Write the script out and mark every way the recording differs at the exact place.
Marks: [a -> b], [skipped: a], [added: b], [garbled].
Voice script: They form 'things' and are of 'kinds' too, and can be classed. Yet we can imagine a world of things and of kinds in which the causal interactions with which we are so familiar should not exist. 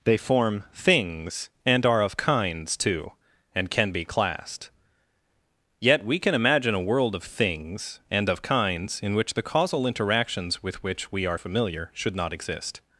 They form 'things' and are of 'kinds' too, and can be classed. Yet we can imagine a world of things and of kinds in which the causal interactions with which we are [skipped: so] familiar should not exist.